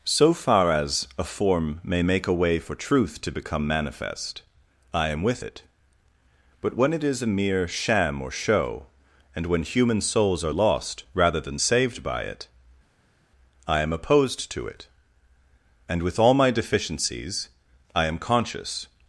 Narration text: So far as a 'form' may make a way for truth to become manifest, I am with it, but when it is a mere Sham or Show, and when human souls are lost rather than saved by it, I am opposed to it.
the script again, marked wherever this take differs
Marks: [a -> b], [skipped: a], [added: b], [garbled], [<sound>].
So far as a 'form' may make a way for truth to become manifest, I am with it, but when it is a mere Sham or Show, and when human souls are lost rather than saved by it, I am opposed to it. [added: And with all my deficiencies I am conscious]